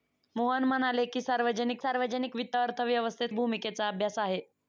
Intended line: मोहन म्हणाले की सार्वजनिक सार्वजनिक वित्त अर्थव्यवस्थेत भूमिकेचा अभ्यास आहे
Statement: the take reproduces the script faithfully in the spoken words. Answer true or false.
true